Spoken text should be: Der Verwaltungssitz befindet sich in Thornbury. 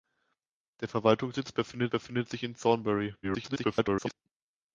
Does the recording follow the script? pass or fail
fail